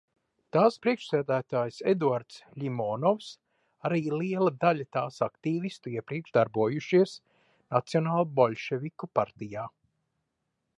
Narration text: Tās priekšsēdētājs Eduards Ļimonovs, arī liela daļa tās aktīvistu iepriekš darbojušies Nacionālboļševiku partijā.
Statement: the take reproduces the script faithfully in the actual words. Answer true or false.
true